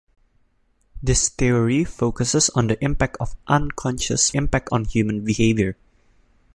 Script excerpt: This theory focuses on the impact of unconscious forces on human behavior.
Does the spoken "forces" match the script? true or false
false